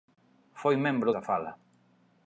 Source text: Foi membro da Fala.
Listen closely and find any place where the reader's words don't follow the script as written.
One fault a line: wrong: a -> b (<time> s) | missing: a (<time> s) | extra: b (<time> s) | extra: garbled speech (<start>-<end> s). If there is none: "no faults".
no faults